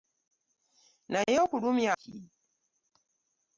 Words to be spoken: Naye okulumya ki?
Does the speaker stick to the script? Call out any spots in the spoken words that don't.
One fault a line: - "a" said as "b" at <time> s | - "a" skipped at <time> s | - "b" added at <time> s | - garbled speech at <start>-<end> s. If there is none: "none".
none